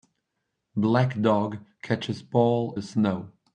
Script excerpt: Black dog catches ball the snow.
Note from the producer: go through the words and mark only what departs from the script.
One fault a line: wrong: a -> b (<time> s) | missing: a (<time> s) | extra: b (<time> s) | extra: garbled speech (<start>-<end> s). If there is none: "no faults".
no faults